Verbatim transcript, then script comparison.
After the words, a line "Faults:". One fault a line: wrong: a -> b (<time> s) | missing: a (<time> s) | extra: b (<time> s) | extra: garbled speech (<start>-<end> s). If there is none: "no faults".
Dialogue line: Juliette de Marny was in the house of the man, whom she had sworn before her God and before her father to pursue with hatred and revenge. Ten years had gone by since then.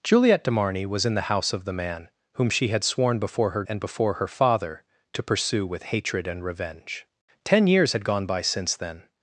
Juliette de Marny was in the house of the man, whom she had sworn before her And before her father to pursue with hatred and revenge. Ten years had gone by since then.
Faults:
missing: God (3.6 s)